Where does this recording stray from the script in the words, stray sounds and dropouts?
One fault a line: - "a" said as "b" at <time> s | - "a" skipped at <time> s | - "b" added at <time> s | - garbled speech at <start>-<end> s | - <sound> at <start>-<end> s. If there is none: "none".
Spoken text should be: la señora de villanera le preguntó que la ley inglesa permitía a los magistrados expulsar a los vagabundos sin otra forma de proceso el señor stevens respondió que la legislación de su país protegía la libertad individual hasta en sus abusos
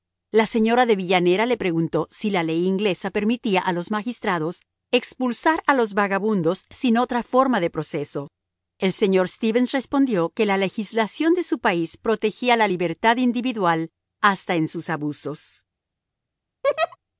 - "que" said as "si" at 2.1 s
- laugh at 16.6-17.0 s